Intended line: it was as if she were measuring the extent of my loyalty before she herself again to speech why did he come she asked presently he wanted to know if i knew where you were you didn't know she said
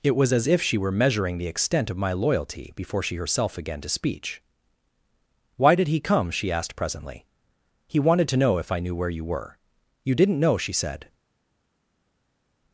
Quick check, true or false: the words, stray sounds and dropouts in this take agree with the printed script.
true